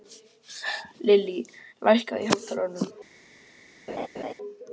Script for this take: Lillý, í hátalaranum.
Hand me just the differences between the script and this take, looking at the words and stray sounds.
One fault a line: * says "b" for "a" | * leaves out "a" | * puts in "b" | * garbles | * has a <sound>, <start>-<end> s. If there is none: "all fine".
* puts in "lækkaðu"
* has a laugh, 3.9-4.3 s